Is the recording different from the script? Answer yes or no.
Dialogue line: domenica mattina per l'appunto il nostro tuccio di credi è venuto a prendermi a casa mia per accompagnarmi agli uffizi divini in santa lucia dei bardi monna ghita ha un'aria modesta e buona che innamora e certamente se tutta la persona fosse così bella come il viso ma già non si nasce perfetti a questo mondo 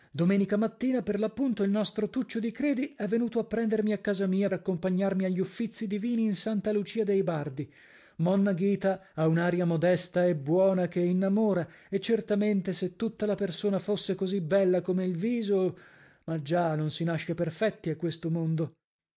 yes